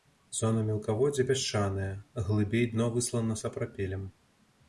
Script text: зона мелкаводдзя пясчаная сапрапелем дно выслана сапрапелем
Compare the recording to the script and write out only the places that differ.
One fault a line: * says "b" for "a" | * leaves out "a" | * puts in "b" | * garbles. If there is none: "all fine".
* says "глыбей" for "сапрапелем"